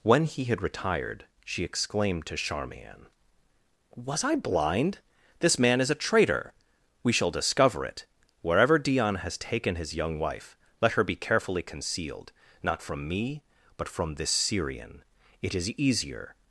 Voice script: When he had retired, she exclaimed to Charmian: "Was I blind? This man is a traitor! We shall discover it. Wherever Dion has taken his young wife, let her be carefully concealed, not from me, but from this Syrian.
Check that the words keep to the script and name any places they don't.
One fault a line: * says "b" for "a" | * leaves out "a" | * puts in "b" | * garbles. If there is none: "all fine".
* puts in "It is easier"